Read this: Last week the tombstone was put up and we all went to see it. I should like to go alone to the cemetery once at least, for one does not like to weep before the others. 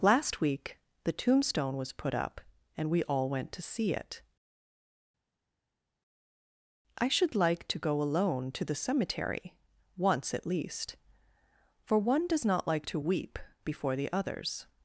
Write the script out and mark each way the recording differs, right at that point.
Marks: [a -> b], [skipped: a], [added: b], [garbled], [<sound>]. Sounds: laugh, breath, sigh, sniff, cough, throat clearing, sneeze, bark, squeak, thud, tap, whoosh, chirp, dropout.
Last week the tombstone was put up and we all went to see it. I should like to go alone to the cemetery once at least, for one does not like to weep before the others.